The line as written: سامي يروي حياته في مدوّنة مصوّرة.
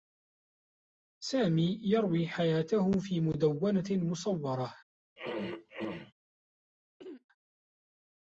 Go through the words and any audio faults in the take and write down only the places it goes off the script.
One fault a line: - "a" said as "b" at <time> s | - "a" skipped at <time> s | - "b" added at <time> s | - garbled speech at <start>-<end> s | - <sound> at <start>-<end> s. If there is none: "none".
- throat clearing at 5.2-6.1 s
- throat clearing at 7.0-7.3 s